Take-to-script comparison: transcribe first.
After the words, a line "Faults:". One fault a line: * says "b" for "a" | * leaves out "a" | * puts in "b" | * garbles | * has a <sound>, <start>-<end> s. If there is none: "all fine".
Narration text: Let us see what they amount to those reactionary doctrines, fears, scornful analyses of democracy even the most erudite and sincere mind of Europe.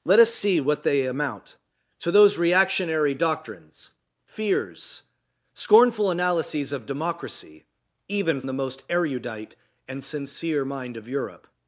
Let us see what they amount to those reactionary doctrines, fears, scornful analyses of democracy even the most erudite and sincere mind of Europe.
Faults:
all fine